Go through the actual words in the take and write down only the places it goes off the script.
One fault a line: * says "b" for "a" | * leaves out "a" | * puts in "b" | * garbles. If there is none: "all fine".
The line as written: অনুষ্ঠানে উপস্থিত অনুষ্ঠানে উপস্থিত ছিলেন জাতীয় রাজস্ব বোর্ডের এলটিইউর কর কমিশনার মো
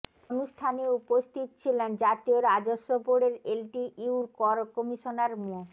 * leaves out "অনুষ্ঠানে উপস্থিত"